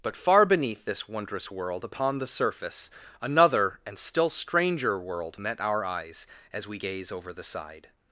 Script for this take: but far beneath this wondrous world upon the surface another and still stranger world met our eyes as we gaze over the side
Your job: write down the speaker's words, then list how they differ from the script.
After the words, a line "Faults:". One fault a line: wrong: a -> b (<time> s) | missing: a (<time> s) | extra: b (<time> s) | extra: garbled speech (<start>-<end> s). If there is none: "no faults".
but far beneath this wondrous world upon the surface another and still stranger world met our eyes as we gaze over the side
Faults:
no faults